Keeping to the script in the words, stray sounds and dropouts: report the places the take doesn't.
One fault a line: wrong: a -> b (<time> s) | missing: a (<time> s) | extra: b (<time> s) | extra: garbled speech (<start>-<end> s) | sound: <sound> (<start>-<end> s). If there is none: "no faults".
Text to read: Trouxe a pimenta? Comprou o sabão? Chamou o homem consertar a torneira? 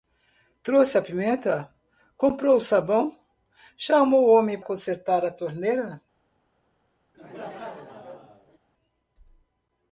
sound: laugh (7.1-8.6 s)